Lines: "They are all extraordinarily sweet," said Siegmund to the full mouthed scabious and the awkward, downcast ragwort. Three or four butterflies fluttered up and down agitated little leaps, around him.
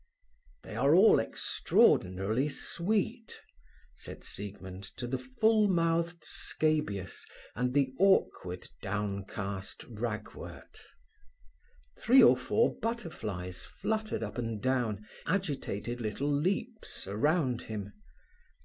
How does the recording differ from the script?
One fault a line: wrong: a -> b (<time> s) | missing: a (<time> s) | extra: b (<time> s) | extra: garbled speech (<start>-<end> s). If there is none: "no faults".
no faults